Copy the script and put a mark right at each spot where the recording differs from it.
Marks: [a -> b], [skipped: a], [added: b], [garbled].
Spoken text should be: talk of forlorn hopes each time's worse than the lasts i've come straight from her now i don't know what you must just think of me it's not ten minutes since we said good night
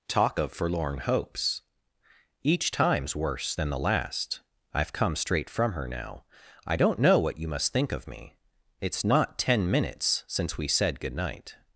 talk of forlorn hopes each time's worse than the [lasts -> last] i've come straight from her now i don't know what you must [skipped: just] think of me it's not ten minutes since we said good night